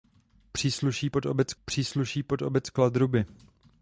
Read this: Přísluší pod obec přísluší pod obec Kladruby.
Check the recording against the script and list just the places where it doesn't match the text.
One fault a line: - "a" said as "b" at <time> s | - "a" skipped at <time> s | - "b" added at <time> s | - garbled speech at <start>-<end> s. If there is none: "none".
none